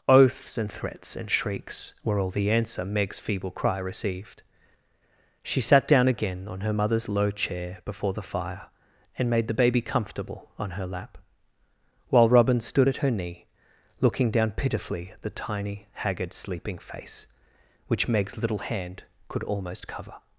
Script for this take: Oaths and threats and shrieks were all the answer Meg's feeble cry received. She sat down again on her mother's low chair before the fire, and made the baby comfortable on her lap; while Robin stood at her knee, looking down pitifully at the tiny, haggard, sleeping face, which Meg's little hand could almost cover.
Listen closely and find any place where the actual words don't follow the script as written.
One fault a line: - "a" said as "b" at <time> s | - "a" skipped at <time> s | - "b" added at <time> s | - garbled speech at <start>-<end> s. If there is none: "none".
none